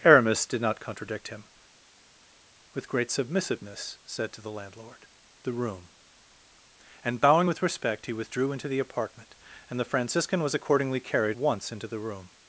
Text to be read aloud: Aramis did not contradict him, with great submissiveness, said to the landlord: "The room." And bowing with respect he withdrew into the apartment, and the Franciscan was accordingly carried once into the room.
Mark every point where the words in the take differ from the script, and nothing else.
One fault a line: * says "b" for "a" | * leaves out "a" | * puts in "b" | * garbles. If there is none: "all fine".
all fine